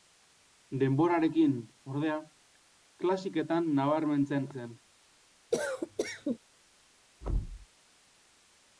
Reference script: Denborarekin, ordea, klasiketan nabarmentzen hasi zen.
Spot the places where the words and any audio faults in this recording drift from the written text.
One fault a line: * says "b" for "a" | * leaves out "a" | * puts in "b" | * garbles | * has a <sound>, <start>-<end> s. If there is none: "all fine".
* leaves out "hasi"
* has a cough, 5.5-6.4 s
* has a thud, 7.2-7.7 s